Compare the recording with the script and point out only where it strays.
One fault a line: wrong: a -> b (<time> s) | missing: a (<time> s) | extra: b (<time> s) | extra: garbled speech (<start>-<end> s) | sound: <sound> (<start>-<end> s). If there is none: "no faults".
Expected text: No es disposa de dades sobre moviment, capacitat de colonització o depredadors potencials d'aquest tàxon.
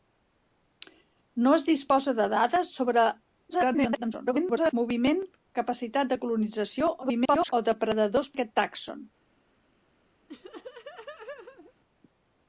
extra: garbled speech (3.5-4.7 s)
extra: garbled speech (7.0-7.5 s)
missing: potencials (8.3 s)
sound: laugh (10.3-11.7 s)